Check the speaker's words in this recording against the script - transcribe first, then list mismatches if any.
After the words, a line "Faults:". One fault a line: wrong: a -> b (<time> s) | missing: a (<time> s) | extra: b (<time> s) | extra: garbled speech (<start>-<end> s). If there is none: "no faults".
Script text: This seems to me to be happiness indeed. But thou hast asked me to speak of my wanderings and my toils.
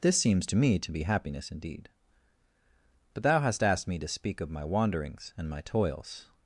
This seems to me to be happiness indeed. But thou hast asked me to speak of my wanderings and my toils.
Faults:
no faults